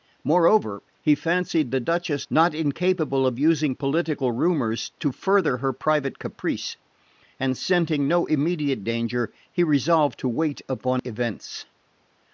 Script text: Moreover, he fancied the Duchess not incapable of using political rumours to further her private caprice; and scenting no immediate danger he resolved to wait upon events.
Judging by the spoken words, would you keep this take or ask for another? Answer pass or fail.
pass